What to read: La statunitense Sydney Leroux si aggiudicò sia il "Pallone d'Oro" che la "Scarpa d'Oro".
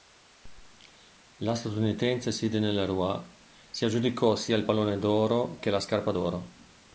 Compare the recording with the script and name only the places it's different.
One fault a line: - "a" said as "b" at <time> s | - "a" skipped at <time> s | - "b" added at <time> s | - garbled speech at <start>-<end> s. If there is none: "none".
none